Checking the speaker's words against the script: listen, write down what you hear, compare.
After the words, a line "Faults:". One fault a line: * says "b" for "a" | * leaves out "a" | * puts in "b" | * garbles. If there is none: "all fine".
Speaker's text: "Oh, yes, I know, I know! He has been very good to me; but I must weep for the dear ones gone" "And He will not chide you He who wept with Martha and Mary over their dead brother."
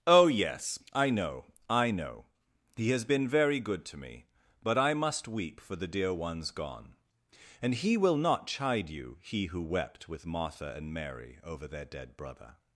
"Oh, yes, I know, I know! He has been very good to me; but I must weep for the dear ones gone" "And He will not chide you He who wept with Martha and Mary over their dead brother."
Faults:
all fine